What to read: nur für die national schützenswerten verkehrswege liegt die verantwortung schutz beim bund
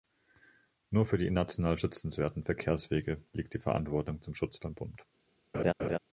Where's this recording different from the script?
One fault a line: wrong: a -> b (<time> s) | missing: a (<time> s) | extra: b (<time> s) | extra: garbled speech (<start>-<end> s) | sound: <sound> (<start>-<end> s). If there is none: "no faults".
extra: zum (4.2 s)
sound: laugh (5.5-6.0 s)